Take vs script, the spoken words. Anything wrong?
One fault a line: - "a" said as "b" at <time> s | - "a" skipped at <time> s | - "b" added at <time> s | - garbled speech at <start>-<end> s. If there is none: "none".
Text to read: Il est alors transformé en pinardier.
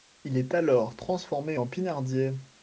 none